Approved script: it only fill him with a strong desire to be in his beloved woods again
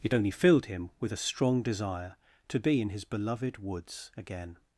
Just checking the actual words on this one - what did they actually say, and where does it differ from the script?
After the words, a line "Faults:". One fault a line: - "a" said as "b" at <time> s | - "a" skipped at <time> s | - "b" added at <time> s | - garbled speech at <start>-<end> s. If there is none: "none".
it only filled him with a strong desire to be in his beloved woods again
Faults:
- "fill" said as "filled" at 0.3 s